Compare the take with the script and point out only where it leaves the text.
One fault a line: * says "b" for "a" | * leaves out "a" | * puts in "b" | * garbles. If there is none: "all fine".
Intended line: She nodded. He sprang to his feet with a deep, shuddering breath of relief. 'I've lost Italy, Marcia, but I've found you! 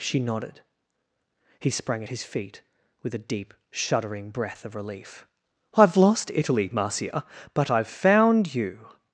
* says "at" for "to"